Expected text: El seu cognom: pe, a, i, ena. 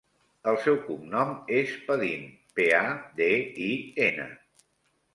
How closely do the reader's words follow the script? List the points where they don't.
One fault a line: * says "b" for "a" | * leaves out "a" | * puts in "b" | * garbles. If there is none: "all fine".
* puts in "és Padin"
* puts in "de"